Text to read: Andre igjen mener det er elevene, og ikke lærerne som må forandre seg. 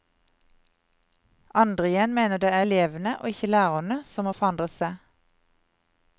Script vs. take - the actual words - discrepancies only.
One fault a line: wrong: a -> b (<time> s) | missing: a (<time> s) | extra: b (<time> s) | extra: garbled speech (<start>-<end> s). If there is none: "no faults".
no faults